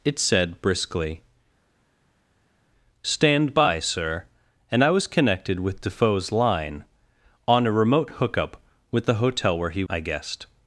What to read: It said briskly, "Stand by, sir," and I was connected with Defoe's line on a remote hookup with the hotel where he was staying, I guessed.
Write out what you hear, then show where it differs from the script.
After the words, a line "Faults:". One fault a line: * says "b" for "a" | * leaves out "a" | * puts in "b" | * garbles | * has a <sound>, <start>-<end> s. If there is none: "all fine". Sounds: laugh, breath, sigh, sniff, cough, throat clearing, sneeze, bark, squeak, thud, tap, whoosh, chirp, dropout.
It said briskly, "Stand by, sir," and I was connected with Defoe's line on a remote hookup with the hotel where he I guessed.
Faults:
* leaves out "was staying"